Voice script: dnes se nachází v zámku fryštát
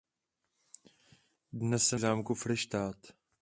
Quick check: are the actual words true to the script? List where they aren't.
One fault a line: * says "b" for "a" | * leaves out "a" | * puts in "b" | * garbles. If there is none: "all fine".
* leaves out "nachází"